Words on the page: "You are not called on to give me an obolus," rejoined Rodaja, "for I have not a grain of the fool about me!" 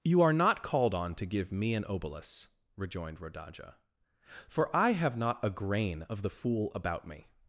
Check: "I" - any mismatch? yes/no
no